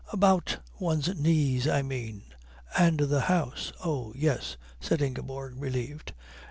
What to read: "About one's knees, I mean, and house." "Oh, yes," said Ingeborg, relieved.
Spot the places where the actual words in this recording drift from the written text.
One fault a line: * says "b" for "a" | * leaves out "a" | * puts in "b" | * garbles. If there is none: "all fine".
* puts in "the"